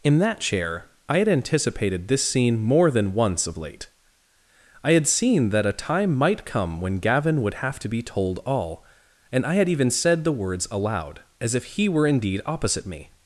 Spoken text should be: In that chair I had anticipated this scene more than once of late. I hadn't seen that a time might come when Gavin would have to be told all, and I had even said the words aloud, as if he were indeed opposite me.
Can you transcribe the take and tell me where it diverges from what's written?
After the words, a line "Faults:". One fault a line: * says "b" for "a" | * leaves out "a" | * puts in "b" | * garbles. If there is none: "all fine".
In that chair I had anticipated this scene more than once of late. I had seen that a time might come when Gavin would have to be told all, and I had even said the words aloud, as if he were indeed opposite me.
Faults:
* says "had" for "hadn't"